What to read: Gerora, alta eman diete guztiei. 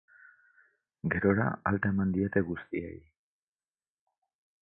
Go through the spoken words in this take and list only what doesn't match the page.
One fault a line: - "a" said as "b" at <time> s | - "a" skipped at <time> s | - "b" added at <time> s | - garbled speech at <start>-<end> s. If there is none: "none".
none